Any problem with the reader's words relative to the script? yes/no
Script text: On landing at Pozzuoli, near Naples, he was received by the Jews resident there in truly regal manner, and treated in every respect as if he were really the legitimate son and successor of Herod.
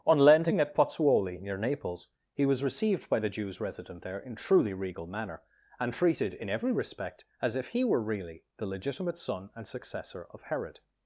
no